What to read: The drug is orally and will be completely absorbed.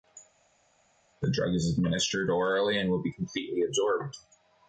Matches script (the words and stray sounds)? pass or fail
fail